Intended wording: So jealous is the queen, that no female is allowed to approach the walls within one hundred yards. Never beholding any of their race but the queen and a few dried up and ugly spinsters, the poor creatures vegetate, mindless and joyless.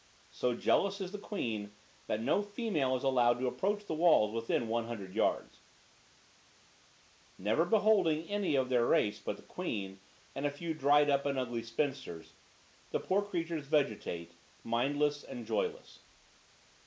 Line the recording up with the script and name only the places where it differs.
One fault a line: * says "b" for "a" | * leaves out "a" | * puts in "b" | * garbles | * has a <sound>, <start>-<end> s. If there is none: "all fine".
all fine